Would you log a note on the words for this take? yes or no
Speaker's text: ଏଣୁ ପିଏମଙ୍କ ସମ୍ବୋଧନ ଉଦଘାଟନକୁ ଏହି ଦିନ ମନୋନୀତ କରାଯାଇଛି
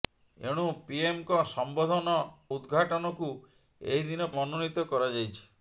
no